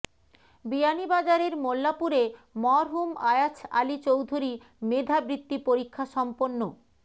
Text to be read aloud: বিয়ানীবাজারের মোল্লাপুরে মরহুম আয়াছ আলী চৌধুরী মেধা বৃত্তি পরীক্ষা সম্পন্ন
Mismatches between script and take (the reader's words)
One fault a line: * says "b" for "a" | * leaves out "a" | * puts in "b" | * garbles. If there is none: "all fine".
all fine